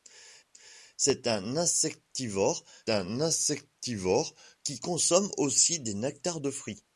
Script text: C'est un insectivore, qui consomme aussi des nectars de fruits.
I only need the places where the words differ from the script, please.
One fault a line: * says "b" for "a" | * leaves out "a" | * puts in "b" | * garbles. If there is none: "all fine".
* puts in "un insectivore"